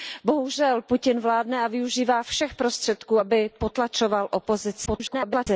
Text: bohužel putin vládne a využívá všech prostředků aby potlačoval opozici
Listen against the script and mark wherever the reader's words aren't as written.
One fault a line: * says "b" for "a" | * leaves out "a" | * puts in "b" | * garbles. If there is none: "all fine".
* garbles